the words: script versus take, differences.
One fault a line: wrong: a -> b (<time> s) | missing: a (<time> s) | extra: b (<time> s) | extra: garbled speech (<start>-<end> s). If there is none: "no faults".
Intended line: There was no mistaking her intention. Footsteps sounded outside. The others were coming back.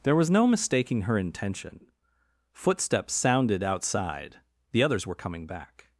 no faults